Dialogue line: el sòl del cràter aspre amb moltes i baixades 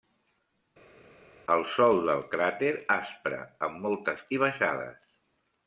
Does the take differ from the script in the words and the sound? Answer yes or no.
no